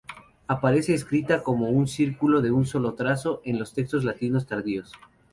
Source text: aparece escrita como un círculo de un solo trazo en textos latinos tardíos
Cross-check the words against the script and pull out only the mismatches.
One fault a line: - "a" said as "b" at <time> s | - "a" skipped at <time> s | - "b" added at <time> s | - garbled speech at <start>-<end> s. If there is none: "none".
- "los" added at 3.6 s